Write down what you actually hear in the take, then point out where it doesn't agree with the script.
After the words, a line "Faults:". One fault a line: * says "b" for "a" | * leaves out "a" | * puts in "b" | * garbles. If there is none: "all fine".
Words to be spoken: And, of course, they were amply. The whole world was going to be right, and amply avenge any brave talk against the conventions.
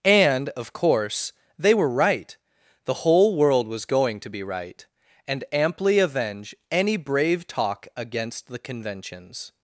And, of course, they were right. The whole world was going to be right, and amply avenge any brave talk against the conventions.
Faults:
* says "right" for "amply"